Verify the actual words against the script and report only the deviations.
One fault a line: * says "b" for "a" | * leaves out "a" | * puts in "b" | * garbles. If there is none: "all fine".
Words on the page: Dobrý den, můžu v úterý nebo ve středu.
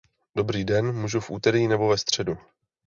all fine